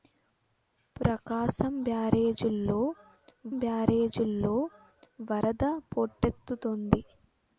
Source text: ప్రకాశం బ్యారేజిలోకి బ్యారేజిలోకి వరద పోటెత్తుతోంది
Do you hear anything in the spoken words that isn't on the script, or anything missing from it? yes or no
no